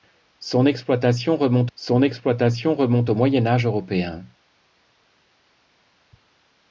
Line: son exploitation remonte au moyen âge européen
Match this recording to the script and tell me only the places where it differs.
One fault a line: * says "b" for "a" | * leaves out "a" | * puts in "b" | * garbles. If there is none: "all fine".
* puts in "son exploitation remonte"